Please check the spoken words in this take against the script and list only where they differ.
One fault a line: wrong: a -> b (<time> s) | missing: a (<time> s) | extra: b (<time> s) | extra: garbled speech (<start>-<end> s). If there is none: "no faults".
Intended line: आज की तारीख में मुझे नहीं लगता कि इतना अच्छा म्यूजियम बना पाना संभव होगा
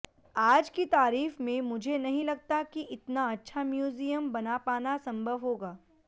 no faults